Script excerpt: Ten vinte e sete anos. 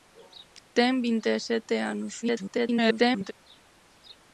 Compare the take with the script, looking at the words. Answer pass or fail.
fail